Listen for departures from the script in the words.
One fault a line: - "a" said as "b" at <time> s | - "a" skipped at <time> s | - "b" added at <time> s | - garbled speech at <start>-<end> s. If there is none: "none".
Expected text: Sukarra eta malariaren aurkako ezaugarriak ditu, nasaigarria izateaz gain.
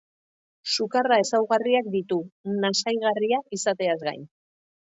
- "eta malariaren aurkako" skipped at 1.2 s